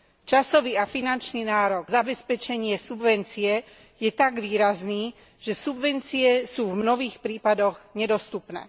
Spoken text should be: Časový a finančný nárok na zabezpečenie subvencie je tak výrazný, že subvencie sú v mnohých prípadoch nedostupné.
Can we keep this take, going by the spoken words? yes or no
no